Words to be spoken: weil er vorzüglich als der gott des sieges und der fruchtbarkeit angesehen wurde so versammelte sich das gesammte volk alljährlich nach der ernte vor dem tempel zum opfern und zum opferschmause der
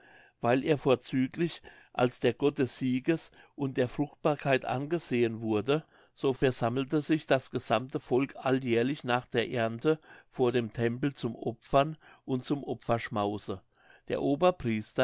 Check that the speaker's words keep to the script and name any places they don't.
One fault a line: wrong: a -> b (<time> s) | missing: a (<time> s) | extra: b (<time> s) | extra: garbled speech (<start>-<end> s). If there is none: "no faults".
no faults